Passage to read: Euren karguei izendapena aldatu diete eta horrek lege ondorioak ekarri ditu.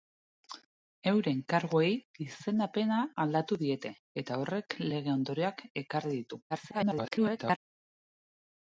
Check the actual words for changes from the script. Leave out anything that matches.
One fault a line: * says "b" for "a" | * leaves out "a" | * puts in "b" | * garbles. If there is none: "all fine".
* garbles